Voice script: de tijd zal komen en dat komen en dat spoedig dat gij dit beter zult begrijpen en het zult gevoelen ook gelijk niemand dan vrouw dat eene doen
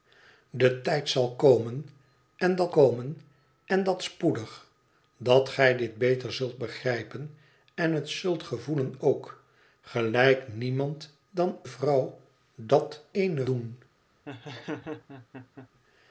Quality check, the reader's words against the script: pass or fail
pass